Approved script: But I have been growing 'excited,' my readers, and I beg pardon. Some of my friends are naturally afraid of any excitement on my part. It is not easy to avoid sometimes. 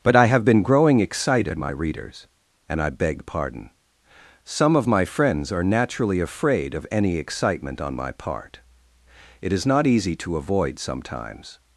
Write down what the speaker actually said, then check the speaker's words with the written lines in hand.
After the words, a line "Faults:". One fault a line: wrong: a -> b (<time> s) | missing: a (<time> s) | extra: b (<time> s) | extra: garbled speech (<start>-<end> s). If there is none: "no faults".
But I have been growing 'excited,' my readers, and I beg pardon. Some of my friends are naturally afraid of any excitement on my part. It is not easy to avoid sometimes.
Faults:
no faults